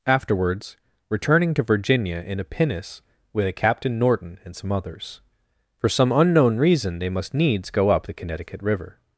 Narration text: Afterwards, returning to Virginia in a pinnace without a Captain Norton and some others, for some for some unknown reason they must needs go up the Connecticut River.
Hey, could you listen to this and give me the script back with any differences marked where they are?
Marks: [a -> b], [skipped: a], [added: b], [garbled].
Afterwards, returning to Virginia in a pinnace [without -> with] a Captain Norton and some others, for some [skipped: for some] unknown reason they must needs go up the Connecticut River.